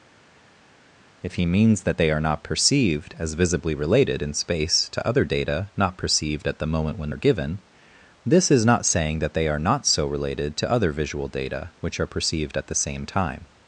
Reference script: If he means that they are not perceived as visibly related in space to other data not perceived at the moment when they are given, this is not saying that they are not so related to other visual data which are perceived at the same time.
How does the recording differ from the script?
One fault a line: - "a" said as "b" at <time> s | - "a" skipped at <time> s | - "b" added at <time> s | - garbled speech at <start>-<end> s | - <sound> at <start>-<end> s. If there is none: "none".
- "they" skipped at 7.1 s